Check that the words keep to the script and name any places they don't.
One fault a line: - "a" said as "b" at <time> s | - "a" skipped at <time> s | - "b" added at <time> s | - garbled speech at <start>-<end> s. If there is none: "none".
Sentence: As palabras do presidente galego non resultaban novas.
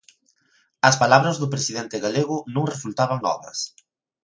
none